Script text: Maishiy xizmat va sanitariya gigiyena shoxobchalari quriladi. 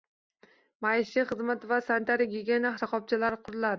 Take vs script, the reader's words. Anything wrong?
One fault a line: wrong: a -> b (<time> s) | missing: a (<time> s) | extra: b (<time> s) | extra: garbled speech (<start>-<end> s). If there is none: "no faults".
no faults